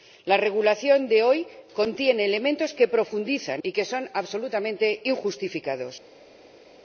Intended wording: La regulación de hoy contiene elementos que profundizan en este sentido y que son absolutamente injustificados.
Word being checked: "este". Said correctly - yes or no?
no